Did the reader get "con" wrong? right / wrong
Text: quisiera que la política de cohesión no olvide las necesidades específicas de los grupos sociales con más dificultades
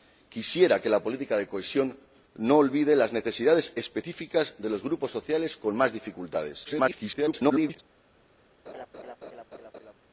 right